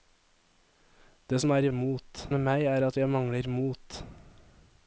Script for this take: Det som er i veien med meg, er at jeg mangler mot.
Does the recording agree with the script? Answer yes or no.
no